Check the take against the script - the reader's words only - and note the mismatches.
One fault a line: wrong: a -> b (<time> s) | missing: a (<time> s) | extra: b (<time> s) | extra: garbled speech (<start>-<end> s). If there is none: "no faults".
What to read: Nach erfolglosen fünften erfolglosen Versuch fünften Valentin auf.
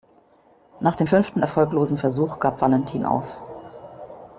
wrong: erfolglosen -> dem (0.9 s)
wrong: fünften -> gab (2.4 s)